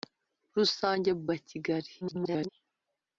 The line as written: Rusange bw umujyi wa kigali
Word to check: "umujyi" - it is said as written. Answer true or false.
false